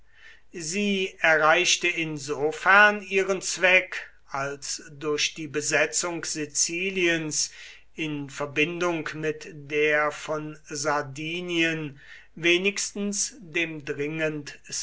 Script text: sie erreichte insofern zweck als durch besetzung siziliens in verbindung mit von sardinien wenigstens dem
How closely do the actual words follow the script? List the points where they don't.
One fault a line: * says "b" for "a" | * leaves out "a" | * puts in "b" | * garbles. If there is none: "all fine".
* puts in "ihren"
* puts in "die"
* puts in "der"